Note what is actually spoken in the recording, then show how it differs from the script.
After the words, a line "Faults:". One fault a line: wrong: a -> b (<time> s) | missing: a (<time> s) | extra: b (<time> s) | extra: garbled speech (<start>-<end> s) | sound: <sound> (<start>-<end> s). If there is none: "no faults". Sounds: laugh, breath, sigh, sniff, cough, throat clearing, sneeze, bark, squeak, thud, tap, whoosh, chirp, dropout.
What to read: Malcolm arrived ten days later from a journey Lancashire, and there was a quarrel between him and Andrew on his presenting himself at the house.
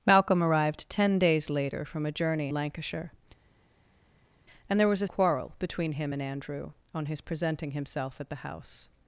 Malcolm arrived ten days later from a journey Lancashire, and there was a quarrel between him and Andrew on his presenting himself at the house.
Faults:
no faults